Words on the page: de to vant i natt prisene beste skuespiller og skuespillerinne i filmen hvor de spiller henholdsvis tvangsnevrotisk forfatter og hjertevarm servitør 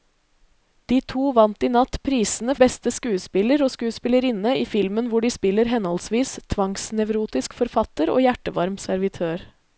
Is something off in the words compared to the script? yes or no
no